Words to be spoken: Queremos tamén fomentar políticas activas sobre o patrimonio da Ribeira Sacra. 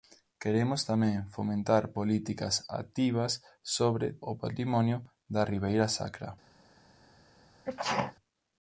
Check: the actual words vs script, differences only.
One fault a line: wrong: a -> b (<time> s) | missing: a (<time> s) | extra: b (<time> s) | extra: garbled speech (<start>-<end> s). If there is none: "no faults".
no faults